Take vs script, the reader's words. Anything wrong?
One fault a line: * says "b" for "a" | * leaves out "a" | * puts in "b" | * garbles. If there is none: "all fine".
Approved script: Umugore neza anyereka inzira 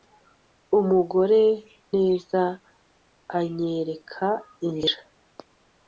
all fine